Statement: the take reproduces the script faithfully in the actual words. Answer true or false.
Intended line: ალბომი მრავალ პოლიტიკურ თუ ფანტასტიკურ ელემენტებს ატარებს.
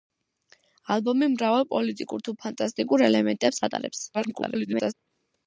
false